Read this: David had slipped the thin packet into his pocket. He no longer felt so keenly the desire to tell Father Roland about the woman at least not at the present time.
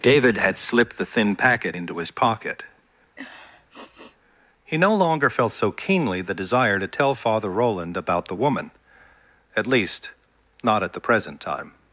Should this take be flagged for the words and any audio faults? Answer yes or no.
yes